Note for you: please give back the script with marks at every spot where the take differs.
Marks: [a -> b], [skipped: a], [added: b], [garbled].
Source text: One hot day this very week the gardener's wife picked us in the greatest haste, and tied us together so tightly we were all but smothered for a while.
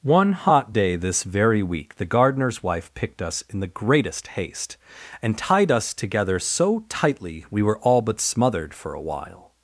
One hot day this very week the gardener's wife picked us in the greatest haste, and tied us together so tightly we were all but smothered for a while.